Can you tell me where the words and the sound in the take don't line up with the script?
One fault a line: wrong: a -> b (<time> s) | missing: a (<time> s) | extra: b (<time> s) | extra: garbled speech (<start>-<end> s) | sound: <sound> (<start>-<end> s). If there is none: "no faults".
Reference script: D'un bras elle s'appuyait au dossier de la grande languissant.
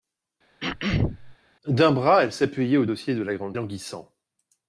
sound: throat clearing (0.6-1.4 s)